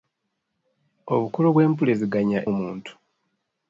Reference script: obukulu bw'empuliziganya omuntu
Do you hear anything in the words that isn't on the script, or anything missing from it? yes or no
no